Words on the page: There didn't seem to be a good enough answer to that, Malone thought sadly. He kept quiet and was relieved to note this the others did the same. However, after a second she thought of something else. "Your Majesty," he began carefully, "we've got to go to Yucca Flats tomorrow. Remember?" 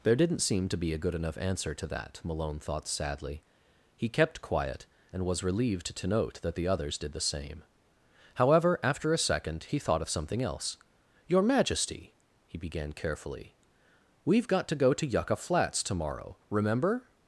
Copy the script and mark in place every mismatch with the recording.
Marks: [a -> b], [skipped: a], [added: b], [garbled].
There didn't seem to be a good enough answer to that, Malone thought sadly. He kept quiet and was relieved to note [this -> that] the others did the same. However, after a second [she -> he] thought of something else. "Your Majesty," he began carefully, "we've got to go to Yucca Flats tomorrow. Remember?"